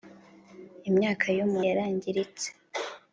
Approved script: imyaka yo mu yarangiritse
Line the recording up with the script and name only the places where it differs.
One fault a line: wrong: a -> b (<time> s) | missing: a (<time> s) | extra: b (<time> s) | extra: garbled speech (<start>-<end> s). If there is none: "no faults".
no faults